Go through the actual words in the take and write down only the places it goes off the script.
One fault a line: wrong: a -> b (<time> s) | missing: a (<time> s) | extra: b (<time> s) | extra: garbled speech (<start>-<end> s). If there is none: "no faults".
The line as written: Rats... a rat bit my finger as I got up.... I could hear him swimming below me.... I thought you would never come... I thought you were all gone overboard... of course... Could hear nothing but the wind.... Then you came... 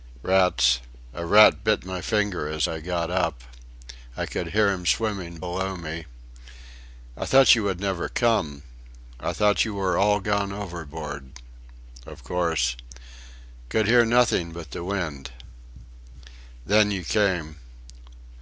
no faults